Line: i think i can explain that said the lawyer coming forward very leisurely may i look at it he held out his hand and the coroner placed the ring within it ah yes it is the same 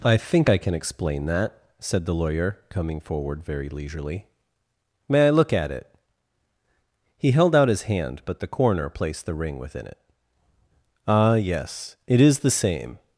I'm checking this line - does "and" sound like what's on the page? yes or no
no